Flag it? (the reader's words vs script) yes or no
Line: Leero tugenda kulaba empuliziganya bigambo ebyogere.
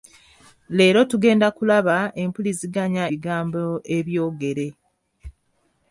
no